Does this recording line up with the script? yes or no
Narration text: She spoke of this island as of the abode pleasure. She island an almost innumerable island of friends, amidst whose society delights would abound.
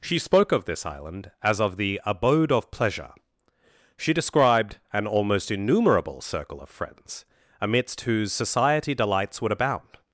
no